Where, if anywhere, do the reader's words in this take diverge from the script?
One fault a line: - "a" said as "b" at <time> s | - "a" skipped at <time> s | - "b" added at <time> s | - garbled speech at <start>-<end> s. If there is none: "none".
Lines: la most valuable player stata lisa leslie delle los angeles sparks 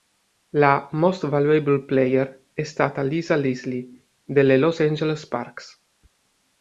- "è" added at 2.5 s